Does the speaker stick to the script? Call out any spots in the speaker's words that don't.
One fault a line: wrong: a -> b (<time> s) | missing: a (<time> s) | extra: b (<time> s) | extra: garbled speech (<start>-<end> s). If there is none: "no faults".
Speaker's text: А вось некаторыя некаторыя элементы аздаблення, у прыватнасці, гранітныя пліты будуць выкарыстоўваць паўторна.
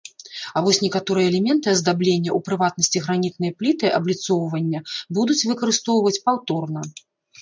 missing: некаторыя (1.3 s)
extra: абліцоўвання (4.0 s)